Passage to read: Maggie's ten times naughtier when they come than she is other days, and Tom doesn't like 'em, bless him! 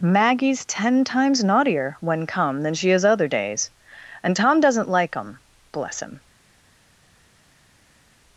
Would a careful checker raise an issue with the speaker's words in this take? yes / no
yes